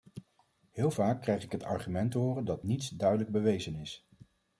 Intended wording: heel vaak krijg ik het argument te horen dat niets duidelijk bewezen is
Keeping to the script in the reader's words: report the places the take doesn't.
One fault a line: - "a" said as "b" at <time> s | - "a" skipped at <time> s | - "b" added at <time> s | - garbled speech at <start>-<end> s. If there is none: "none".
none